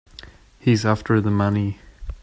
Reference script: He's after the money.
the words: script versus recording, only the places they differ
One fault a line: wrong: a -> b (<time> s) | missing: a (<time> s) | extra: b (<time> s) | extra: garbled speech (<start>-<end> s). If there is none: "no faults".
no faults